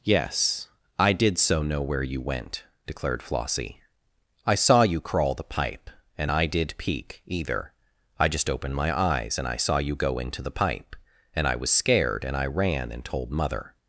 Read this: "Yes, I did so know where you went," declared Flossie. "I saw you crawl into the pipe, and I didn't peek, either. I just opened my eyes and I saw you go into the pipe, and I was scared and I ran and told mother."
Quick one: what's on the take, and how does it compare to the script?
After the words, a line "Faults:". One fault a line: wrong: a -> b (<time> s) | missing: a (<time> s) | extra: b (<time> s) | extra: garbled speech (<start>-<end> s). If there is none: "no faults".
"Yes, I did so know where you went," declared Flossie. "I saw you crawl the pipe, and I did peek, either. I just opened my eyes and I saw you go into the pipe, and I was scared and I ran and told mother."
Faults:
missing: into (5.3 s)
wrong: didn't -> did (6.5 s)